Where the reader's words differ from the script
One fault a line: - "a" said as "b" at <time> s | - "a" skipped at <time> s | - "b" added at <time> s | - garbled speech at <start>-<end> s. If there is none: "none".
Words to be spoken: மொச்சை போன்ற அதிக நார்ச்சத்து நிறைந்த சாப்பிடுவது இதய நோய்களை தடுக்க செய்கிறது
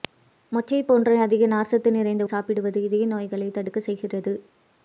none